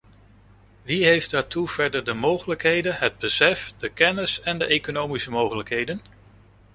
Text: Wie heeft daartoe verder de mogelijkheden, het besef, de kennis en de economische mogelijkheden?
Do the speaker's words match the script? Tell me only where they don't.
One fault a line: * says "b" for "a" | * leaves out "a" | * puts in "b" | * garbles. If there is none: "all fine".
all fine